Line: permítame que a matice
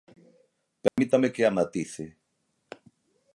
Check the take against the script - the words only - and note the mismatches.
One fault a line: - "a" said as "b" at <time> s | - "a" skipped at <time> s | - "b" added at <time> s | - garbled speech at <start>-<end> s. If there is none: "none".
none